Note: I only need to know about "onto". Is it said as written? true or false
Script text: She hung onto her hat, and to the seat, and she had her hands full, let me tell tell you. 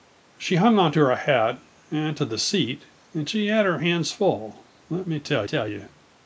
true